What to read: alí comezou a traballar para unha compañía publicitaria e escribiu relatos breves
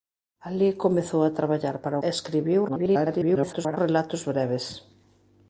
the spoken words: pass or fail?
fail